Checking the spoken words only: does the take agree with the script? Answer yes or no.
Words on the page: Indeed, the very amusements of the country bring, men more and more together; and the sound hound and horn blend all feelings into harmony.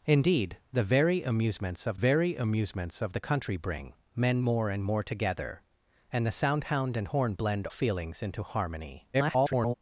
no